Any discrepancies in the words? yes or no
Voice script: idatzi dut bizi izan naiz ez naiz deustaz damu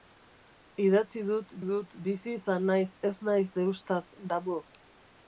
yes